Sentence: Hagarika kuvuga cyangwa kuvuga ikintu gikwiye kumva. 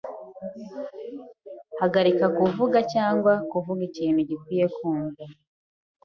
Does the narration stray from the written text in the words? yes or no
no